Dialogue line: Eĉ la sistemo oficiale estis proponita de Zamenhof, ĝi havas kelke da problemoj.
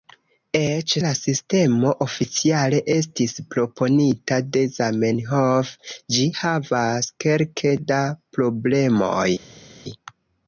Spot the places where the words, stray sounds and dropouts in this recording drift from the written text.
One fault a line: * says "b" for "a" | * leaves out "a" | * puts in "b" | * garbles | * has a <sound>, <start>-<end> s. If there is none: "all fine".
all fine